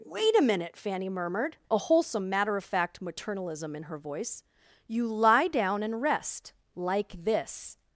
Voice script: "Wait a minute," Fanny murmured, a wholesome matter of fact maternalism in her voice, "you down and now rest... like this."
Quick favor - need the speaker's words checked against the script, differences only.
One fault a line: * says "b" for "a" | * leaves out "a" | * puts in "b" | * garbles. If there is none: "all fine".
* puts in "lie"
* leaves out "now"